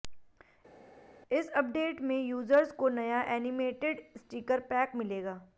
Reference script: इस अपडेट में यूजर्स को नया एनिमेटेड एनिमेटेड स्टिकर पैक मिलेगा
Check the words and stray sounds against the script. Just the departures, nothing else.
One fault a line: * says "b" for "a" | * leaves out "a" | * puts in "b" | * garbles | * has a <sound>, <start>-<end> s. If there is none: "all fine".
* leaves out "एनिमेटेड"